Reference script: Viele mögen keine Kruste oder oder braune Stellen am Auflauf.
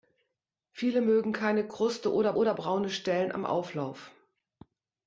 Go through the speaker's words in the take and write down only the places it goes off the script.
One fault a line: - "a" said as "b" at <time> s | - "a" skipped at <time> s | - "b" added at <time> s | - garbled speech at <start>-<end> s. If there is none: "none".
none